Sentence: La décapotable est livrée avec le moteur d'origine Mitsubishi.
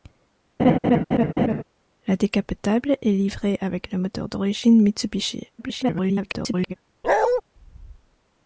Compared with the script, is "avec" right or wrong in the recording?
right